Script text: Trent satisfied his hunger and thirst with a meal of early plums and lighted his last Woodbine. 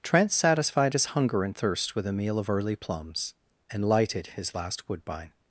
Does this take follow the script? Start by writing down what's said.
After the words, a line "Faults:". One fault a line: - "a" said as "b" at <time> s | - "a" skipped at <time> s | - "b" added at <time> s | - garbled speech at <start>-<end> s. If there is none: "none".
Trent satisfied his hunger and thirst with a meal of early plums and lighted his last Woodbine.
Faults:
none